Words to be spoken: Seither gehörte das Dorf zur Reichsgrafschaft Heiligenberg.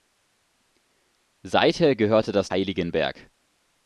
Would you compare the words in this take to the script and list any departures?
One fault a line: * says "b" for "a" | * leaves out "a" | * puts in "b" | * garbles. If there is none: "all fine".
* leaves out "Dorf zur Reichsgrafschaft"